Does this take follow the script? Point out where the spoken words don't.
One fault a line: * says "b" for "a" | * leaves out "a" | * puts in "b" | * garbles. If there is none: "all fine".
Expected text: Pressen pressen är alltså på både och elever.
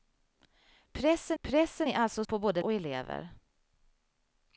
all fine